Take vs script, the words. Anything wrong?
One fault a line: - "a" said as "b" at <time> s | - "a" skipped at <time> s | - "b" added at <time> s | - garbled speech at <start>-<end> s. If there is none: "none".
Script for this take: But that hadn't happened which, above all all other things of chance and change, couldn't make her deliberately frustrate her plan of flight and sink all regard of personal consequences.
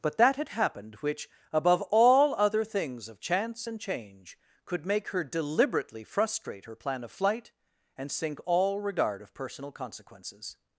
- "hadn't" said as "had" at 0.3 s
- "all" skipped at 2.3 s
- "couldn't" said as "could" at 4.6 s